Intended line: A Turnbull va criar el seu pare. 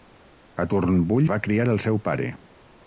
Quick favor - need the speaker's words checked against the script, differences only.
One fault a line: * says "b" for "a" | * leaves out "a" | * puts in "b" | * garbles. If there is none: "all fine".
all fine